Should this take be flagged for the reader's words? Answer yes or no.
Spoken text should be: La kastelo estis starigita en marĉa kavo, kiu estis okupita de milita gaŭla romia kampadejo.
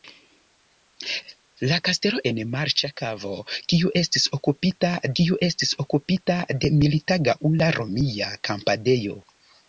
yes